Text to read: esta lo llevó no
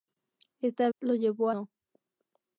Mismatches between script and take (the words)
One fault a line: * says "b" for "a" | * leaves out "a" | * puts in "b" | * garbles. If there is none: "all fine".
all fine